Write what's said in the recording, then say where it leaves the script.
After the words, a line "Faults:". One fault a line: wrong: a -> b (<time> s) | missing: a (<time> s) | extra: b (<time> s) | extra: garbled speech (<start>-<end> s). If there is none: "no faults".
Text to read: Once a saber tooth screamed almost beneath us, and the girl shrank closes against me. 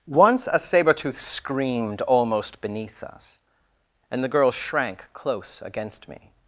Once a saber tooth screamed almost beneath us, and the girl shrank close against me.
Faults:
wrong: closes -> close (5.1 s)